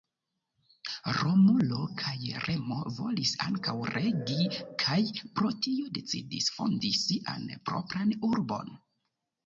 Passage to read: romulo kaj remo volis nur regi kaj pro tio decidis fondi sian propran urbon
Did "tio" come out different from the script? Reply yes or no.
no